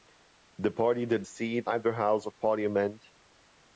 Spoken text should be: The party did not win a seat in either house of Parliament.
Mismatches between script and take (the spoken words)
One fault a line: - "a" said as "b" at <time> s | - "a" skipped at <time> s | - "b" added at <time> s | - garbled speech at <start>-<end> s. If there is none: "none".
- "not win" skipped at 1.3 s
- "in" skipped at 1.7 s